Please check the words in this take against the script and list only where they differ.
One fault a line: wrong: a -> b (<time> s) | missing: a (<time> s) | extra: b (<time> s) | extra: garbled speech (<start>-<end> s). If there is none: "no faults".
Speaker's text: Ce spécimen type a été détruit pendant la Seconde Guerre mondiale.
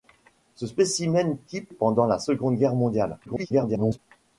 missing: a été détruit (1.7 s)
extra: garbled speech (3.3-4.0 s)